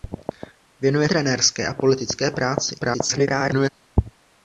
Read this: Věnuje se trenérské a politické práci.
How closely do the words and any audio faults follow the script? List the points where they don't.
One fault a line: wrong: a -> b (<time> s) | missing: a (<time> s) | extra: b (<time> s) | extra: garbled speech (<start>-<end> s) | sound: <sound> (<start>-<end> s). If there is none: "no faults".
missing: se (1.1 s)
extra: garbled speech (2.8-3.7 s)